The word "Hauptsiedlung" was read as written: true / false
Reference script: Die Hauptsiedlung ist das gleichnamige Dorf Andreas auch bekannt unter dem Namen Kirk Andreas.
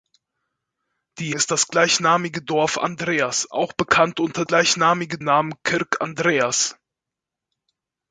false